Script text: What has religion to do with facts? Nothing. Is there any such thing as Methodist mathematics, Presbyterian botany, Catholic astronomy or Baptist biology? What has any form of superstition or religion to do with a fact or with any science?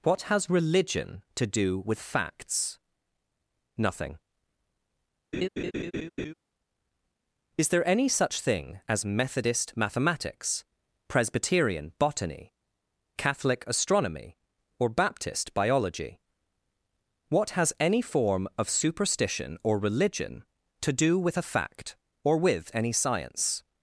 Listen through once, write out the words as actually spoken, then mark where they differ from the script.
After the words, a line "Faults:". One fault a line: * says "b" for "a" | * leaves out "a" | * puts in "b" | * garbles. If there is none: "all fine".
What has religion to do with facts? Nothing. Is there any such thing as Methodist mathematics, Presbyterian botany, Catholic astronomy or Baptist biology? What has any form of superstition or religion to do with a fact or with any science?
Faults:
all fine